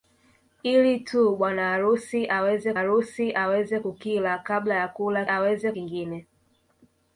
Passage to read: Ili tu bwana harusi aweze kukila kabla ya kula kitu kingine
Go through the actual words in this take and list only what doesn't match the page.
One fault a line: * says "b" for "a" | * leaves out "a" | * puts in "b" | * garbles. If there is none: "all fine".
* puts in "harusi aweze"
* says "aweze" for "kitu"